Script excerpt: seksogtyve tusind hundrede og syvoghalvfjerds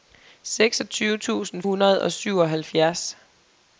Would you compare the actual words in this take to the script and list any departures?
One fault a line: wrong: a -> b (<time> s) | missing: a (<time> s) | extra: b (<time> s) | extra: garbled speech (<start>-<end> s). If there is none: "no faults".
no faults